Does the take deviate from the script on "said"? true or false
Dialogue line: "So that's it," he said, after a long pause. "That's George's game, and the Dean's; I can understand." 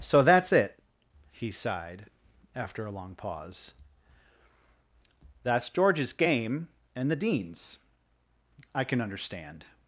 true